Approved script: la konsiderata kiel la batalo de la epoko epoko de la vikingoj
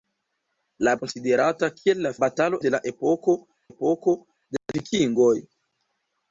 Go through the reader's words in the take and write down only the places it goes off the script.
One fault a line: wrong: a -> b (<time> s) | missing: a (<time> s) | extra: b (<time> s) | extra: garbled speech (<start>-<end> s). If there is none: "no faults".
no faults